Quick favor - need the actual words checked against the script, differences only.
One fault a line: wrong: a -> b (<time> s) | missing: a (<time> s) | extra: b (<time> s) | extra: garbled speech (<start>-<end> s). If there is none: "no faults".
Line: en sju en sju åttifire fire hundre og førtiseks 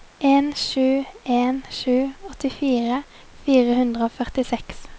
no faults